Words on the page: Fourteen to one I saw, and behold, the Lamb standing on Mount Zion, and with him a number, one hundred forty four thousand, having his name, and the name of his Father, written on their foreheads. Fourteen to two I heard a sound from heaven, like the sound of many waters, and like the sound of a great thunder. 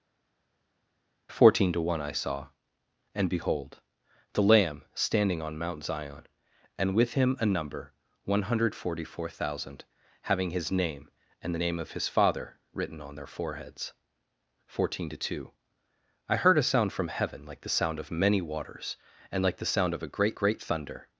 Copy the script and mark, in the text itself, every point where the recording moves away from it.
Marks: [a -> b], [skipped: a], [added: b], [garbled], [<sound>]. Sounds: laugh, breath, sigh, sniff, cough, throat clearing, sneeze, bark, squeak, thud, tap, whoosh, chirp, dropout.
Fourteen to one I saw, and behold, the Lamb standing on Mount Zion, and with him a number, one hundred forty four thousand, having his name, and the name of his Father, written on their foreheads. Fourteen to two I heard a sound from heaven, like the sound of many waters, and like the sound of a great [added: great] thunder.